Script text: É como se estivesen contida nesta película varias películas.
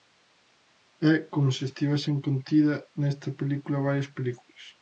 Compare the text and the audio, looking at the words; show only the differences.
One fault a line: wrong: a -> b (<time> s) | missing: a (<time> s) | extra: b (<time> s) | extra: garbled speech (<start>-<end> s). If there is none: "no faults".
no faults